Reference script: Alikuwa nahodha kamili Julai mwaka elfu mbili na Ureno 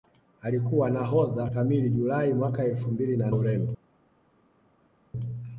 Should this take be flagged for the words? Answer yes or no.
no